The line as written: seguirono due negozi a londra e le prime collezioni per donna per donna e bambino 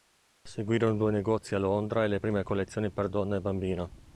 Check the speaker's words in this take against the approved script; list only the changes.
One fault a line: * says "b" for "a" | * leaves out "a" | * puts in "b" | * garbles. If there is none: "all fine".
* leaves out "per donna"